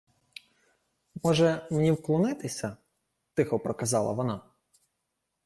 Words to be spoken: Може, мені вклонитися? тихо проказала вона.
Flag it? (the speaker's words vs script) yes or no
no